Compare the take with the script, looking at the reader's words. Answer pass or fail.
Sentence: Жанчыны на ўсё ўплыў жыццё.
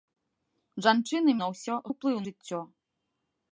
pass